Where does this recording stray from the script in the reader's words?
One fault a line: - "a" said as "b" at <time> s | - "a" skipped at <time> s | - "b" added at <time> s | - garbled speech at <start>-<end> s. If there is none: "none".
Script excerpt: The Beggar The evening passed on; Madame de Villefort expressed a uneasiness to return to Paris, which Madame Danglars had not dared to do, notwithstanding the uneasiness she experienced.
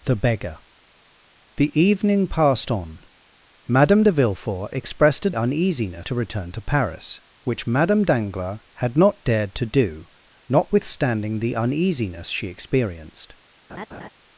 none